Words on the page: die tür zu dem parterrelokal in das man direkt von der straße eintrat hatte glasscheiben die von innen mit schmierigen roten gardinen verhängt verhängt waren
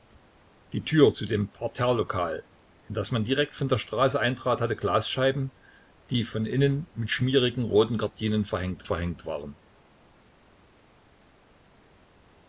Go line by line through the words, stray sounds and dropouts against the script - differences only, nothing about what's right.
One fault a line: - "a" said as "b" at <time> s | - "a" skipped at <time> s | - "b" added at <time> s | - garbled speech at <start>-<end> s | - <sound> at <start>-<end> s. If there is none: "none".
none